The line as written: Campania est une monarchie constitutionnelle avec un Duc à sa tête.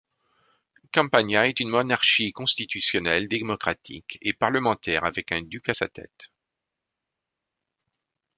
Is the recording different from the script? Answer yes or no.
yes